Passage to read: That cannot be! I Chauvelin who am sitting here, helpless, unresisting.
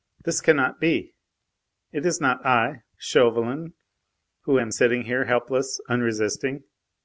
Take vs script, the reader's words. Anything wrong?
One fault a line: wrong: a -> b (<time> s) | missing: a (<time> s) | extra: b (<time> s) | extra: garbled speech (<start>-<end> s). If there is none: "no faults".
wrong: That -> This (0.2 s)
extra: It is not (1.9 s)